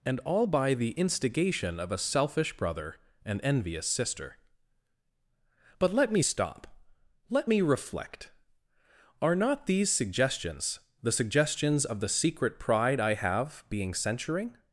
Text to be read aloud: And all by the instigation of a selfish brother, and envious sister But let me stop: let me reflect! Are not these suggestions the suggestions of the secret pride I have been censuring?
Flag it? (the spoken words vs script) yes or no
yes